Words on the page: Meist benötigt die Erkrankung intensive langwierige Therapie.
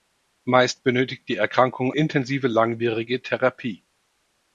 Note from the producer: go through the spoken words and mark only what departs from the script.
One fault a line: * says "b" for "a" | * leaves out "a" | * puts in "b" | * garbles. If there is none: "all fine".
all fine